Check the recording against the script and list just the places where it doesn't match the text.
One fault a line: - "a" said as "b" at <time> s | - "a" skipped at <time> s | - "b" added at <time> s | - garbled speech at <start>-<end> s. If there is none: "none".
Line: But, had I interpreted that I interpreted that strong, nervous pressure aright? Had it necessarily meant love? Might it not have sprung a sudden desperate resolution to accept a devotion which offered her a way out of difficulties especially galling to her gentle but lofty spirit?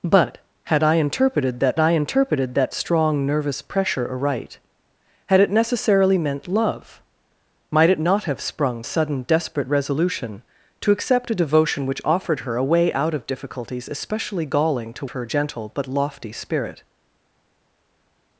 none